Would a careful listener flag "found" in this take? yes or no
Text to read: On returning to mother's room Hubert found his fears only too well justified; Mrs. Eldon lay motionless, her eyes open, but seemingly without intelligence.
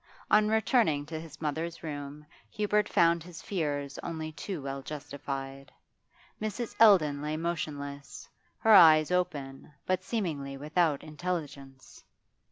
no